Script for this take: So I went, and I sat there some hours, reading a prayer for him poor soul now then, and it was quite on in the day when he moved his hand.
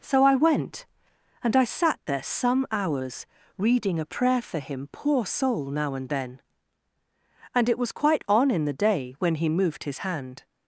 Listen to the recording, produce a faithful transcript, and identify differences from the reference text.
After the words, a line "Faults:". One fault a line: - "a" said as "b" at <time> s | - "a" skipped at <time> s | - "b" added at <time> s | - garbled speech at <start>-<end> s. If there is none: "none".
So I went, and I sat there some hours, reading a prayer for him poor soul now and then, and it was quite on in the day when he moved his hand.
Faults:
- "and" added at 5.9 s